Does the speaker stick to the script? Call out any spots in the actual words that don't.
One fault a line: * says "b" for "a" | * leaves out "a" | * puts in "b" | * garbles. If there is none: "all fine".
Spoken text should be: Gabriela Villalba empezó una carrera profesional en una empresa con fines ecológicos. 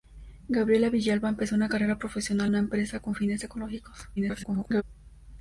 * leaves out "en"
* garbles